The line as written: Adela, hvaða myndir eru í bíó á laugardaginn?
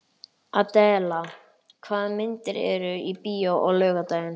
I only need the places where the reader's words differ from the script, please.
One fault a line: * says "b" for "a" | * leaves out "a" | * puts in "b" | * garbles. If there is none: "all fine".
all fine